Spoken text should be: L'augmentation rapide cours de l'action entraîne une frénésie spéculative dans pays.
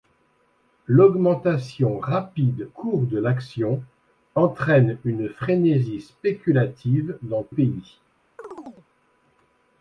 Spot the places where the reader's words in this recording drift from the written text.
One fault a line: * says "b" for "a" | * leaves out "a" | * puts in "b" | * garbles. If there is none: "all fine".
all fine